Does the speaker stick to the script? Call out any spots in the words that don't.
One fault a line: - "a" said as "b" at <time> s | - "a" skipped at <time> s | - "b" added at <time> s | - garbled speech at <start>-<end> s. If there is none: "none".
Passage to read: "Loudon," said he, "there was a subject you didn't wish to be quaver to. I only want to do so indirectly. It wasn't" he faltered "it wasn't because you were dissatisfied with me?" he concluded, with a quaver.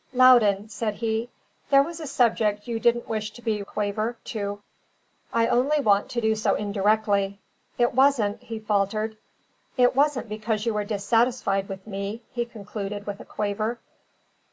none